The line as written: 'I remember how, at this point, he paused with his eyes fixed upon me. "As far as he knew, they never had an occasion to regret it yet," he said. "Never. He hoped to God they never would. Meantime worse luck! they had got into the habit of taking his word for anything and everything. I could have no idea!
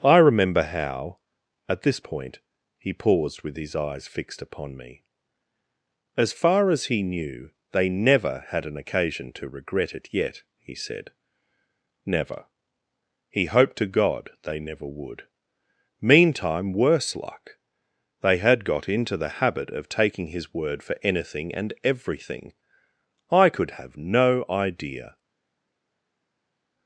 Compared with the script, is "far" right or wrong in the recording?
right